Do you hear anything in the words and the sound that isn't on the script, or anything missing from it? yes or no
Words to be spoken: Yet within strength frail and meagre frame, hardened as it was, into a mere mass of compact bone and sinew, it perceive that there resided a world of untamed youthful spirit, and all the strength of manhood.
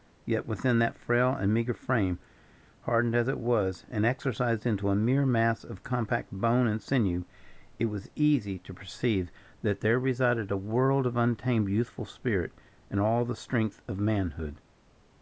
yes